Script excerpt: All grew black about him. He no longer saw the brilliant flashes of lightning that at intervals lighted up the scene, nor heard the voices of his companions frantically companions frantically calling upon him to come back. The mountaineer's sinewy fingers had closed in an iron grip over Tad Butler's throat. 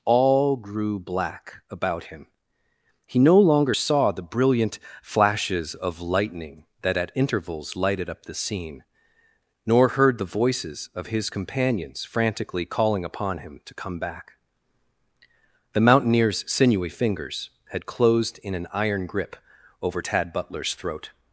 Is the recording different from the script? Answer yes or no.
yes